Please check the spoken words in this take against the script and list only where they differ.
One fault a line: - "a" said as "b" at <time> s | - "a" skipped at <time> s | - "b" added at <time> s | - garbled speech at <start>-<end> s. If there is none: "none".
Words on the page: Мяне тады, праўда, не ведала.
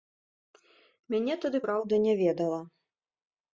none